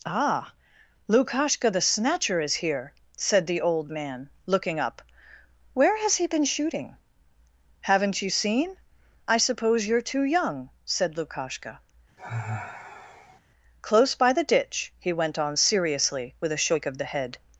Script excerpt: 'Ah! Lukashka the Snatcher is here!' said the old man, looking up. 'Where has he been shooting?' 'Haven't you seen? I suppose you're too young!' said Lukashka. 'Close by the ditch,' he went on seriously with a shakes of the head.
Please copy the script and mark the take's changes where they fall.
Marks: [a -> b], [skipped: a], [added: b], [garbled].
'Ah! Lukashka the Snatcher is here!' said the old man, looking up. 'Where has he been shooting?' 'Haven't you seen? I suppose you're too young!' said Lukashka. 'Close by the ditch,' he went on seriously with a [shakes -> shake] of the head.